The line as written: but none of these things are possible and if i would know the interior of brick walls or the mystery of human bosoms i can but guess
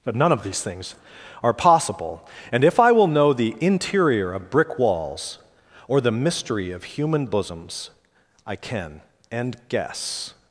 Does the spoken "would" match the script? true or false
false